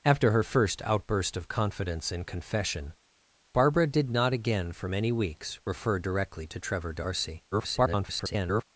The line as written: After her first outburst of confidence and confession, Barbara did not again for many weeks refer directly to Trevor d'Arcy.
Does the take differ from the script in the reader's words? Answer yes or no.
yes